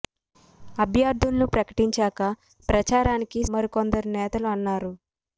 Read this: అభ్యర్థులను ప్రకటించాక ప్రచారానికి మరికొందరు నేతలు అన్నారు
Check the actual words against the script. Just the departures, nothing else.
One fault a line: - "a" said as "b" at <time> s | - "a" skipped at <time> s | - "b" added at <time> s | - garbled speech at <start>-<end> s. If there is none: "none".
none